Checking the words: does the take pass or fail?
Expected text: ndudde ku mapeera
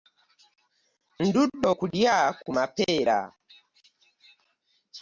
fail